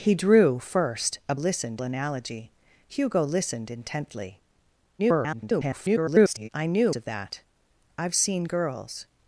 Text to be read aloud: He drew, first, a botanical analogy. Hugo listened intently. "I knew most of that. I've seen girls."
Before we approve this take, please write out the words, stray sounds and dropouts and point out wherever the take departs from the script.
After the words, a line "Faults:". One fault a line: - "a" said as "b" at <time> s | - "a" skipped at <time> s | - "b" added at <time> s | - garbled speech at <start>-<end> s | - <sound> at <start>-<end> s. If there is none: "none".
He drew, first, a listened analogy. Hugo listened intently. [garbled] "I knew of that. I've seen girls."
Faults:
- "botanical" said as "listened" at 1.3 s
- garbled speech at 5.0-6.5 s
- "most" skipped at 7.0 s